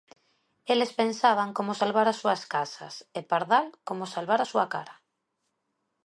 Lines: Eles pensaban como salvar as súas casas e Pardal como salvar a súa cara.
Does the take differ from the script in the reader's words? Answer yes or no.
no